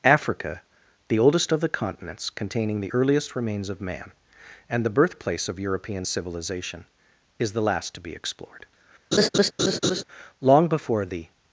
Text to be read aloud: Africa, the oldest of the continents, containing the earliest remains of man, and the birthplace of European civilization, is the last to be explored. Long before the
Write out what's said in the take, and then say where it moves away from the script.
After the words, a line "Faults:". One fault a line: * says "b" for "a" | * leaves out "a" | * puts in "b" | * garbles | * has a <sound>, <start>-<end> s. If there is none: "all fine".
Africa, the oldest of the continents, containing the earliest remains of man, and the birthplace of European civilization, is the last to be explored. Long before the
Faults:
* has a laugh, 9.1-10.0 s